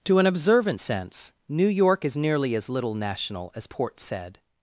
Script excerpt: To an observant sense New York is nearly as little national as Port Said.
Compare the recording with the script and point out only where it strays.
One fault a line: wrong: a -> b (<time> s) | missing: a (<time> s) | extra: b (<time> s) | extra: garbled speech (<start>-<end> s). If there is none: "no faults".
no faults